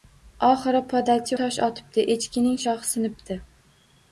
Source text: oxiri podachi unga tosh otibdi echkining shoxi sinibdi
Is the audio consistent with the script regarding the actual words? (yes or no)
no